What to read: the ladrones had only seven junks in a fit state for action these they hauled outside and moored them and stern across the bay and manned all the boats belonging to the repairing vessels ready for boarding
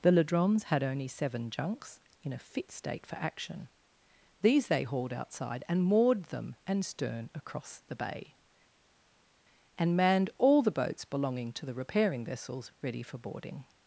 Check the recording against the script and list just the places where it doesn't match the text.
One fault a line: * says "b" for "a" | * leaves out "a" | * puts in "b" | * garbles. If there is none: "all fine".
all fine